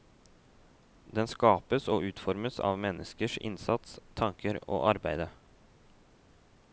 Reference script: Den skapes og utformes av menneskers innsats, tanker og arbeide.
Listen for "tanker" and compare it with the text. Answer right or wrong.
right